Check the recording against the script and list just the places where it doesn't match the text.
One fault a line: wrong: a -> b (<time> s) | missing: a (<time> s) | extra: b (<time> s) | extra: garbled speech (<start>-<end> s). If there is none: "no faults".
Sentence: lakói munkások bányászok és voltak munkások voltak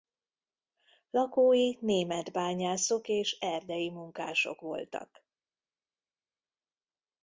wrong: munkások -> német (1.8 s)
wrong: voltak -> erdei (3.4 s)